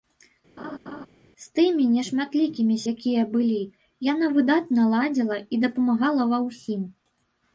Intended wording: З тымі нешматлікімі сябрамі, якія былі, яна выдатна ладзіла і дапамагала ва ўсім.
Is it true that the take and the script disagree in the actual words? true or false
true